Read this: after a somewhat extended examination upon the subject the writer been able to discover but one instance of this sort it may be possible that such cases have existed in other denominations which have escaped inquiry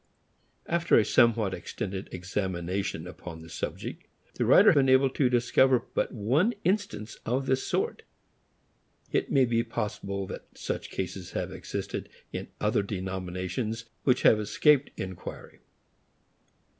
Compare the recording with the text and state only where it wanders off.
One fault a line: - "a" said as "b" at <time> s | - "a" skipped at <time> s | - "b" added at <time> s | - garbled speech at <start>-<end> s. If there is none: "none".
none